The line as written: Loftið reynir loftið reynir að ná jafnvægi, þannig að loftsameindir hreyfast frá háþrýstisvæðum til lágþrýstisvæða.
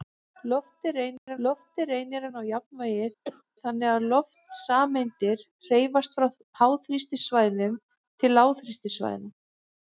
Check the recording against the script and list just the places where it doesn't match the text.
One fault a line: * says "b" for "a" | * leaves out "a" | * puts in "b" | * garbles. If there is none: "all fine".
all fine